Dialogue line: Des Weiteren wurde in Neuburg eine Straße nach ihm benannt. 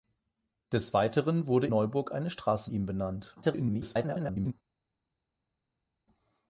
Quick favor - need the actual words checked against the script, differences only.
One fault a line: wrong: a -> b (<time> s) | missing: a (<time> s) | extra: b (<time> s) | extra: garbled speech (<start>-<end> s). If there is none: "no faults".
missing: in (1.7 s)
missing: nach (2.7 s)
extra: garbled speech (3.4-4.5 s)